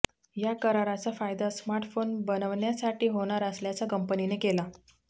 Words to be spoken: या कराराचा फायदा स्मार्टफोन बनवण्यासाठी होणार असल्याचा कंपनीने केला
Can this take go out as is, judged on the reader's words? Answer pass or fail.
pass